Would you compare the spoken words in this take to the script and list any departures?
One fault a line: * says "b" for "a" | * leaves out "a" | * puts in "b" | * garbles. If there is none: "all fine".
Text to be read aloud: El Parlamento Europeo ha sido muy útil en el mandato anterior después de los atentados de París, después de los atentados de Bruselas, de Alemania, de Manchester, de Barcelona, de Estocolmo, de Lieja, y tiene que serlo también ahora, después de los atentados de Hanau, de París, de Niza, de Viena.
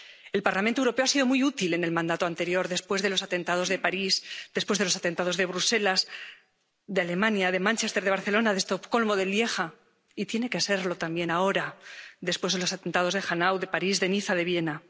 all fine